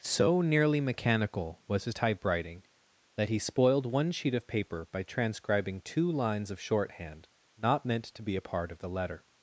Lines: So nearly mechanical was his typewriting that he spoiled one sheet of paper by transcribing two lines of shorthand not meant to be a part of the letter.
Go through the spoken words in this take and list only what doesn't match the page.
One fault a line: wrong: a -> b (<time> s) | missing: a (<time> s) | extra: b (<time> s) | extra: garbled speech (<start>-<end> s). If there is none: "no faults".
no faults